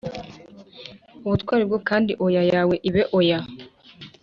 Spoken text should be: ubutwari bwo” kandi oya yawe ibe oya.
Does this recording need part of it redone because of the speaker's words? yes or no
no